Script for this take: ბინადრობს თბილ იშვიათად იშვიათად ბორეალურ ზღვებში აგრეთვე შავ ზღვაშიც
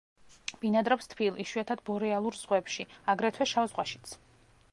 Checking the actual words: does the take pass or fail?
fail